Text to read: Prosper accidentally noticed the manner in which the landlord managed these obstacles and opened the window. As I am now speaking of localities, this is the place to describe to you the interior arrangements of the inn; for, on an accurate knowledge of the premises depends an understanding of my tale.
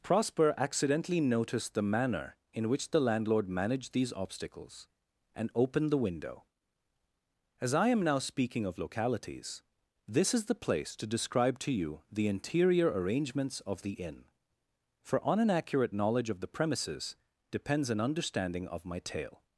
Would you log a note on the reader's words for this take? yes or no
no